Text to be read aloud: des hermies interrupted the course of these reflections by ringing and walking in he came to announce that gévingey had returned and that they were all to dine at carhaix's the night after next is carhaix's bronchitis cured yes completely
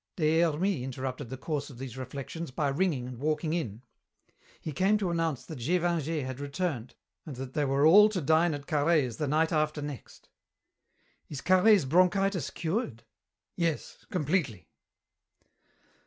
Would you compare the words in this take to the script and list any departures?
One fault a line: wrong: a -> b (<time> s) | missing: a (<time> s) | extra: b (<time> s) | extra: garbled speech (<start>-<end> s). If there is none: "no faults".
no faults